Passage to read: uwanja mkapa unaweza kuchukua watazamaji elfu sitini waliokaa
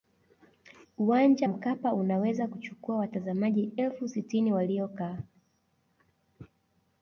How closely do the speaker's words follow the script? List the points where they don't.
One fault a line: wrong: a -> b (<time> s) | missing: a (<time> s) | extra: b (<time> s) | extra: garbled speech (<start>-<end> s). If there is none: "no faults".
no faults